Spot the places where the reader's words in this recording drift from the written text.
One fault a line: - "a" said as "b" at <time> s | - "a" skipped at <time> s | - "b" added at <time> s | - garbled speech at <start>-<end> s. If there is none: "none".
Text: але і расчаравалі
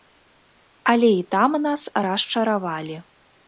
- "там нас" added at 1.4 s